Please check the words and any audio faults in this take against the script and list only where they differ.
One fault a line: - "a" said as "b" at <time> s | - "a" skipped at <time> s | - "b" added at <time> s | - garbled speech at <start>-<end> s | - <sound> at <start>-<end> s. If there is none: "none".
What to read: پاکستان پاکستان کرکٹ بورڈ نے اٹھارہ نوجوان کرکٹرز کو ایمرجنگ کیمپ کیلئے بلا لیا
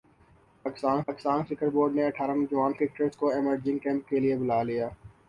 none